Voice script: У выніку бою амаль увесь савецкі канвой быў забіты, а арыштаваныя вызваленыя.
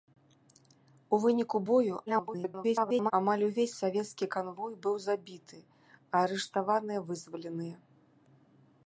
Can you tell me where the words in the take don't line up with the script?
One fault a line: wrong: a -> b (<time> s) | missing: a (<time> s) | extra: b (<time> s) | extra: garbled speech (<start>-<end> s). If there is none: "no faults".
extra: garbled speech (2.1-3.1 s)